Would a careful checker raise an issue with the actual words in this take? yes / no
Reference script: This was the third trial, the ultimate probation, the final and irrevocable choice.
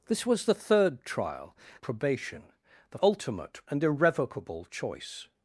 yes